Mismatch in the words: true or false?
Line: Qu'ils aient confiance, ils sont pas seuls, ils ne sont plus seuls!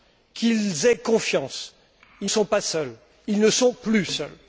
false